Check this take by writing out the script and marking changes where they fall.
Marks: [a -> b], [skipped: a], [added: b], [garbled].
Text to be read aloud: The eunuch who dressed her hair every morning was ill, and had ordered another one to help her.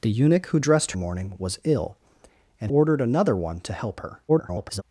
The eunuch who dressed [skipped: her hair every] morning was ill, and [skipped: had] ordered another one to help her. [garbled]